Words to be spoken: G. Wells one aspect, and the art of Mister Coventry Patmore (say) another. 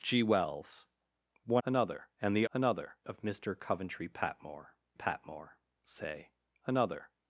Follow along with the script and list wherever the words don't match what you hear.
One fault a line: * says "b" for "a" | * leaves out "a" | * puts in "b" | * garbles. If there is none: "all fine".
* says "another" for "aspect"
* says "another" for "art"
* puts in "Patmore"